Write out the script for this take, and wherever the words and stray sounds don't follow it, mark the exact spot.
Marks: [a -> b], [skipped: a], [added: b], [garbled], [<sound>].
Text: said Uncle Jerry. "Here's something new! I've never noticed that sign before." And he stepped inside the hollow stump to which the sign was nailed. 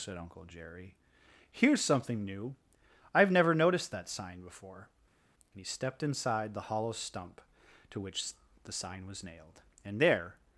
said Uncle Jerry. "Here's something new! I've never noticed that sign before." And he stepped inside the hollow stump to which the sign was nailed. [added: And there]